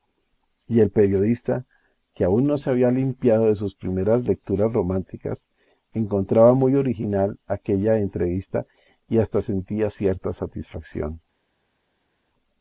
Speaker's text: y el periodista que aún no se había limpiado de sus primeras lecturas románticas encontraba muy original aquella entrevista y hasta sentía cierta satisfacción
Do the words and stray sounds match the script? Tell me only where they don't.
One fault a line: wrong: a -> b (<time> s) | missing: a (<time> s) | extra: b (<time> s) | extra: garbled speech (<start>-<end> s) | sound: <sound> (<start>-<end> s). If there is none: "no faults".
no faults